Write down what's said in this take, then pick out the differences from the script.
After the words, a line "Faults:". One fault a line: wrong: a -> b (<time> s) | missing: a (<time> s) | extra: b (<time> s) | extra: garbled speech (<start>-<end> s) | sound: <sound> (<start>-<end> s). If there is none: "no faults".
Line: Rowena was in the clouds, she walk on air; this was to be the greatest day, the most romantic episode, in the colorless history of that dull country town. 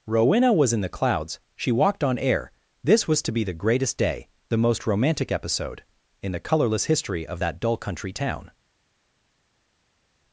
Rowena was in the clouds, she walked on air; this was to be the greatest day, the most romantic episode, in the colorless history of that dull country town.
Faults:
wrong: walk -> walked (1.7 s)